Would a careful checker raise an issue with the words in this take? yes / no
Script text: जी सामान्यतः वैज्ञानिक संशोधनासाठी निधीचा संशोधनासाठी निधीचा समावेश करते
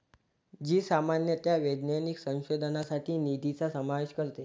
yes